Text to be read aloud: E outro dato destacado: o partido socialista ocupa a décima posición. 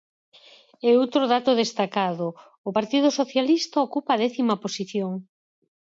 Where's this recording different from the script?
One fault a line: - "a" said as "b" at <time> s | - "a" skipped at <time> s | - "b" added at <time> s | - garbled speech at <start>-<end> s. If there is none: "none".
none